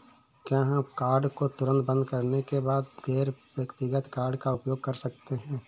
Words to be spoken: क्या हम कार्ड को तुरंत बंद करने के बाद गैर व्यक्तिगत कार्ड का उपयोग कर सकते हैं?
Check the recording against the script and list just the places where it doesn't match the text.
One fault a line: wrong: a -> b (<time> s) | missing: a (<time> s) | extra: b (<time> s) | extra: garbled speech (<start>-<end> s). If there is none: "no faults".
no faults